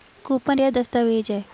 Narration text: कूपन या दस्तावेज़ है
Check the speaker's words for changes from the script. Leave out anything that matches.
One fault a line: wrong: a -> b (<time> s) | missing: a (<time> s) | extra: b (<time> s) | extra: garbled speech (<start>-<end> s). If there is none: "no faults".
no faults